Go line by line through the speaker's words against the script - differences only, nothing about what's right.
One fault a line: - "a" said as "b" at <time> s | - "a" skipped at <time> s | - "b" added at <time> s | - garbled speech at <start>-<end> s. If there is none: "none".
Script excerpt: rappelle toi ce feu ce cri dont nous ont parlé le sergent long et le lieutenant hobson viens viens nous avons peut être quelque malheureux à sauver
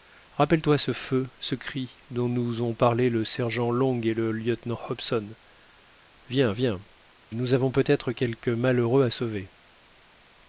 none